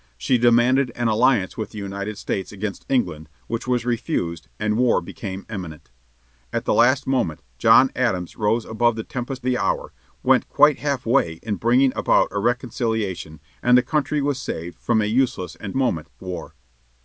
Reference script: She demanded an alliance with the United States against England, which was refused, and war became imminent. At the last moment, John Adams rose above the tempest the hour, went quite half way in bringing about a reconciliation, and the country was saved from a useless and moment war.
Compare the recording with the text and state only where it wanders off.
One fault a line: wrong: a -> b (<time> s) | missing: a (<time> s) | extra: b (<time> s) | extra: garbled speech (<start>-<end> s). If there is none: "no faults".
no faults